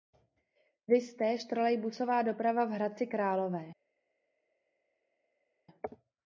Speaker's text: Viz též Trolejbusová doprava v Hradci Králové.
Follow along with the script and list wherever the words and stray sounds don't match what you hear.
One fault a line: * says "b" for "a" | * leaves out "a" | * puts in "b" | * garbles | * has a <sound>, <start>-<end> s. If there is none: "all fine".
all fine